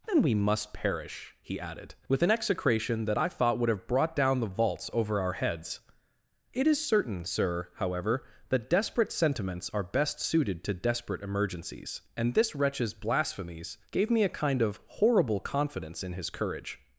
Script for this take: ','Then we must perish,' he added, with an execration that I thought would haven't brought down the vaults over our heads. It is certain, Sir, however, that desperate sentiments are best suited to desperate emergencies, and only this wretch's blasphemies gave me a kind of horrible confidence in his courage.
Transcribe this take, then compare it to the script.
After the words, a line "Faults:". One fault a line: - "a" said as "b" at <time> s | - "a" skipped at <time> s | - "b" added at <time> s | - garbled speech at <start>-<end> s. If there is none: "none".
','Then we must perish,' he added, with an execration that I thought would have brought down the vaults over our heads. It is certain, Sir, however, that desperate sentiments are best suited to desperate emergencies, and this wretch's blasphemies gave me a kind of horrible confidence in his courage.
Faults:
- "haven't" said as "have" at 3.7 s
- "only" skipped at 12.3 s